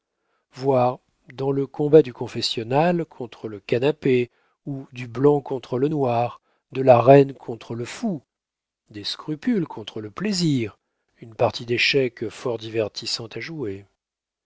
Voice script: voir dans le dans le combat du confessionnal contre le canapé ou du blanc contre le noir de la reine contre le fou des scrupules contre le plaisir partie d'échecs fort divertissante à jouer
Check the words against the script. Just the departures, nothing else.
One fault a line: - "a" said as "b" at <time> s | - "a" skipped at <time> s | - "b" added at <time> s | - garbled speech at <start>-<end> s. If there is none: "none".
- "dans le" skipped at 1.7 s
- "une" added at 11.2 s